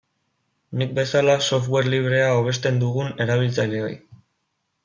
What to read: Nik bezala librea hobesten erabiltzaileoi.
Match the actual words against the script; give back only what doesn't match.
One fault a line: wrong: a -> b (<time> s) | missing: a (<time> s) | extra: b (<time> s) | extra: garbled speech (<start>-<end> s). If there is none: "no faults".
extra: software (1.5 s)
extra: dugun (2.9 s)